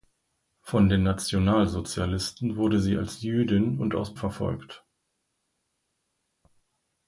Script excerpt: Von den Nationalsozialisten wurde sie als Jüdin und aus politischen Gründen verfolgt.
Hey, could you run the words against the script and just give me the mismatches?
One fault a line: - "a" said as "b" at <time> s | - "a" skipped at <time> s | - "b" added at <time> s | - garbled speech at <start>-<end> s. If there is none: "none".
- "politischen Gründen" skipped at 4.2 s